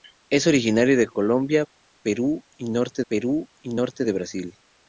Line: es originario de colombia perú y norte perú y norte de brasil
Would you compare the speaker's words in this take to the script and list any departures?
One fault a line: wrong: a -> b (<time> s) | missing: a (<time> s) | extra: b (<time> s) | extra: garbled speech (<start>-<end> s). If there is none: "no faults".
no faults